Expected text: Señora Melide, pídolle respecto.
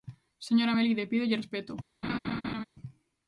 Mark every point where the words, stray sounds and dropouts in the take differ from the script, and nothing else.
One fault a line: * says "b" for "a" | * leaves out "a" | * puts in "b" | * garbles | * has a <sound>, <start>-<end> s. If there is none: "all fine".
* has a laugh, 2.0-2.6 s